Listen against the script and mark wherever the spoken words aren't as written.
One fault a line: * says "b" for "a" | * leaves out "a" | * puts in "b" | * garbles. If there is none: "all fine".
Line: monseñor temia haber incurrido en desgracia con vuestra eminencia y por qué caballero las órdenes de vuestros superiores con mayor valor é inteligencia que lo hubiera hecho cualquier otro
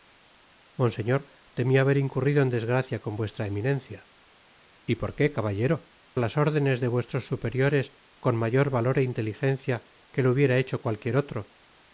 all fine